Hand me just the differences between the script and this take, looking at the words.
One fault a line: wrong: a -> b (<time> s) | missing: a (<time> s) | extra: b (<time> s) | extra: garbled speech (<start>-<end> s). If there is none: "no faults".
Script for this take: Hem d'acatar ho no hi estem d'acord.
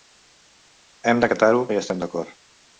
no faults